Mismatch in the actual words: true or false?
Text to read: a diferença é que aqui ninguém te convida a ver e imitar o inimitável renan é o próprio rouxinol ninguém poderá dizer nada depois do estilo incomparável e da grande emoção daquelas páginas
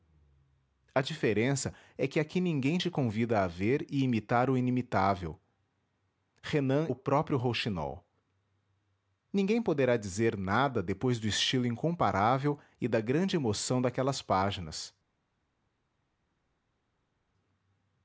true